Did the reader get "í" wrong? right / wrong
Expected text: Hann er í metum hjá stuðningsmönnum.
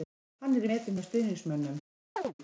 right